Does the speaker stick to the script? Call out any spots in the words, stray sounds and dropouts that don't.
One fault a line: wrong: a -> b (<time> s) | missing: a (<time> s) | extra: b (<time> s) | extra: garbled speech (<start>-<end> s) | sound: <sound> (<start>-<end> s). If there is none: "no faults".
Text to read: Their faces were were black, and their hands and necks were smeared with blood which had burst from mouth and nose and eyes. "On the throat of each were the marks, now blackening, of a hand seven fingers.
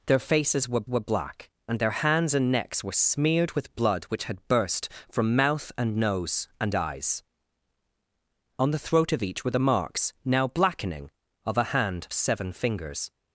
no faults